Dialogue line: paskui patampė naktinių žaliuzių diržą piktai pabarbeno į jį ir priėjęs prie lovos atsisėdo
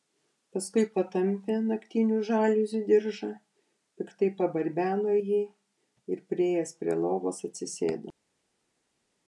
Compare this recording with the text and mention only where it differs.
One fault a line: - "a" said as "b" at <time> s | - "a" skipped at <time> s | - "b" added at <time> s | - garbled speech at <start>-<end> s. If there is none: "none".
none